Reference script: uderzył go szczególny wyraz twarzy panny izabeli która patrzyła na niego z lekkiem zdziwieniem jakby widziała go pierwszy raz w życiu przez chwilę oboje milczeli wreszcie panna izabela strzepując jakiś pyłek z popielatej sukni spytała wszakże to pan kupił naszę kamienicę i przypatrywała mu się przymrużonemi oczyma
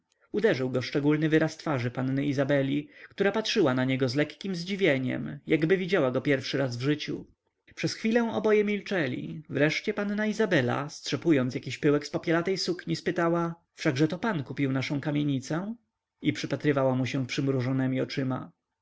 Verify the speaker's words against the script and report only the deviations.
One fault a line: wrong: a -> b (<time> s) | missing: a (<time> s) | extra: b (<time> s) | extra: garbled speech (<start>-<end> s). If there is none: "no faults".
no faults